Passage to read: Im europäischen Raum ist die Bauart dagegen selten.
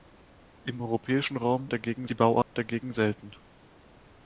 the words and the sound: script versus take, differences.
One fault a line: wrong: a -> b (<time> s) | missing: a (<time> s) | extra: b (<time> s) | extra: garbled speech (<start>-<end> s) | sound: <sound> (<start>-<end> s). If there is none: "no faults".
wrong: ist -> dagegen (1.7 s)
sound: dropout (2.4-2.5 s)